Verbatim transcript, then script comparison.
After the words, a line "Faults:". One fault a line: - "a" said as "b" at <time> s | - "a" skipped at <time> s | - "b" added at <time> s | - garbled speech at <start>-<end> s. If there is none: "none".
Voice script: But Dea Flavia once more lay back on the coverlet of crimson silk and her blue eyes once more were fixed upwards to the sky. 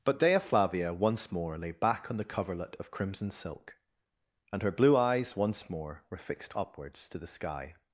But Dea Flavia once more lay back on the coverlet of crimson silk and her blue eyes once more were fixed upwards to the sky.
Faults:
none